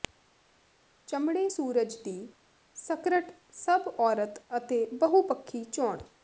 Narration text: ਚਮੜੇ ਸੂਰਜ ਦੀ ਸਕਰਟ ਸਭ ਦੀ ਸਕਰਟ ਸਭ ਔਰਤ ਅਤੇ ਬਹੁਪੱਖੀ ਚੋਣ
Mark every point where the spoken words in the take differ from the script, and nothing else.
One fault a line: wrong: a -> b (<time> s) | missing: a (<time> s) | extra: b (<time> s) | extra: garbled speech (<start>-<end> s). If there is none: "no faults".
missing: ਦੀ ਸਕਰਟ ਸਭ (3.9 s)